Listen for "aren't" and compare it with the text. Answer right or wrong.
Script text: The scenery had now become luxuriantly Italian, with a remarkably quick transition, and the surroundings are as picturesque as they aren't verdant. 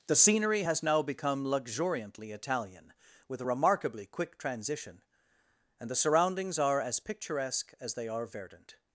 wrong